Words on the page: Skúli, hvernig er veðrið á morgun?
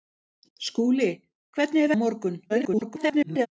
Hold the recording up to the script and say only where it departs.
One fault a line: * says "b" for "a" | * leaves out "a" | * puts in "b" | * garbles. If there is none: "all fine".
* leaves out "veðrið"
* garbles